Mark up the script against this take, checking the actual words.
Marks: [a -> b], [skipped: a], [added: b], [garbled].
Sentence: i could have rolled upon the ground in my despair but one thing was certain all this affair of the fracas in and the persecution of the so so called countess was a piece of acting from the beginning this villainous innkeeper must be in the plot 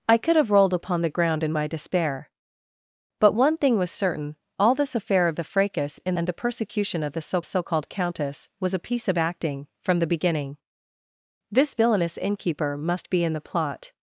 i could have rolled upon the ground in my despair but one thing was certain all this affair of the fracas in and the persecution of the so so called countess was a piece of acting from the beginning this villainous innkeeper must be in the plot